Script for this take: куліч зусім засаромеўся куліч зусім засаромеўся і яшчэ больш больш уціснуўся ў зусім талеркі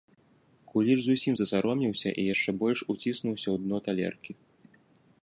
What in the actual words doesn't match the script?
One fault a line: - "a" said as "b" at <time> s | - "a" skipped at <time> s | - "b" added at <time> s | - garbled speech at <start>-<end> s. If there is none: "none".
- "куліч зусім засаромеўся" skipped at 2.1 s
- "больш" skipped at 2.8 s
- "зусім" said as "дно" at 3.6 s